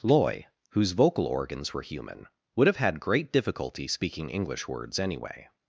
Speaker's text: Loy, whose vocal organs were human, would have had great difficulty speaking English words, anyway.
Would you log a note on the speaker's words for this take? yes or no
no